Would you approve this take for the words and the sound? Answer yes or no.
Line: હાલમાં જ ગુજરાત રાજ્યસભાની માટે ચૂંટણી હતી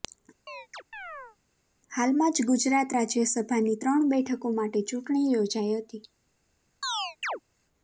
no